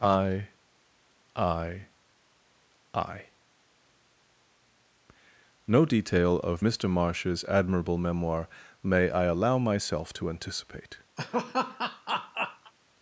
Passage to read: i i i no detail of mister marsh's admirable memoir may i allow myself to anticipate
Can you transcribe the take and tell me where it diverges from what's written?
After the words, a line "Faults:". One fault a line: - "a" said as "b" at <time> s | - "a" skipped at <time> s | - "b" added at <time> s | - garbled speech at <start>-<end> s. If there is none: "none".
i i i no detail of mister marsh's admirable memoir may i allow myself to anticipate
Faults:
none